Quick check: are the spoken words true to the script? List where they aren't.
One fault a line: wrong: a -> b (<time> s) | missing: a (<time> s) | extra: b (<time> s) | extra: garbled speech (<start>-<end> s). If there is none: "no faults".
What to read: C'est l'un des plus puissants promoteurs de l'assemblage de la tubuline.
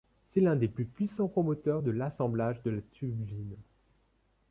no faults